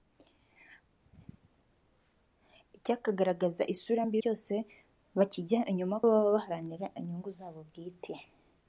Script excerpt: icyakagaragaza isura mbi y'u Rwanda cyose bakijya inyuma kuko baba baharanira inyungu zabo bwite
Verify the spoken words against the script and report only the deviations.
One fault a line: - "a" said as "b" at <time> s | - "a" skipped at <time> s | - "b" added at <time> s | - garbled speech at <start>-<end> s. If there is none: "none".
- "y'u Rwanda" skipped at 4.2 s
- "kuko" skipped at 6.0 s